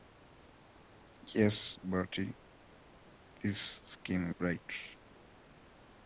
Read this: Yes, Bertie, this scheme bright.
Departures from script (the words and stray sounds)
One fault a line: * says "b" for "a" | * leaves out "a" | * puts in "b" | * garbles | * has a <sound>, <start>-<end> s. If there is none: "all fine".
all fine